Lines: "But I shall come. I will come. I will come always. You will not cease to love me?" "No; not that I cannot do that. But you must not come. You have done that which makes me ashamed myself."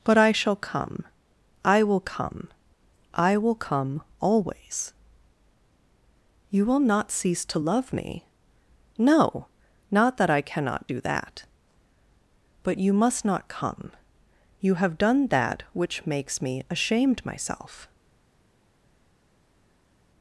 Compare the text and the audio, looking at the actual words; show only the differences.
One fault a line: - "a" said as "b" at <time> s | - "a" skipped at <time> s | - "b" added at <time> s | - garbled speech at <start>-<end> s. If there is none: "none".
none